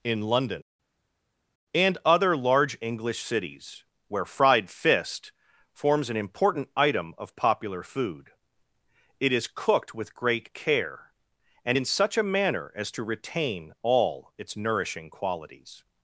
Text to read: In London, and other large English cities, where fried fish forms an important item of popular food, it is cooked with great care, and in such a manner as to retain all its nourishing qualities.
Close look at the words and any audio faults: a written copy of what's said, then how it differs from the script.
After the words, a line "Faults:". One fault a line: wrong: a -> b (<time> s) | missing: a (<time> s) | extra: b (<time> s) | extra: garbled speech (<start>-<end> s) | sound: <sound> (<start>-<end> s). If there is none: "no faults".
In London, and other large English cities, where fried fist forms an important item of popular food, it is cooked with great care, and in such a manner as to retain all its nourishing qualities.
Faults:
wrong: fish -> fist (4.7 s)